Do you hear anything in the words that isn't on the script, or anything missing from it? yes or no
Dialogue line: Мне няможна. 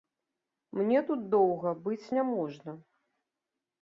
yes